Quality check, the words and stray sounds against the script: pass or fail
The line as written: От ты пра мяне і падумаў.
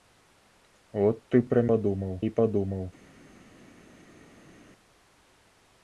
fail